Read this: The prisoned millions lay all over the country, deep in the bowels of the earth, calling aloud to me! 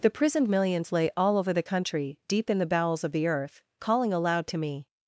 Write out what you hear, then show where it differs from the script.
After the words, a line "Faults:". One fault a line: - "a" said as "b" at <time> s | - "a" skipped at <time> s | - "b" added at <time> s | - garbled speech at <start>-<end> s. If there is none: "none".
The prisoned millions lay all over the country, deep in the bowels of the earth, calling aloud to me!
Faults:
none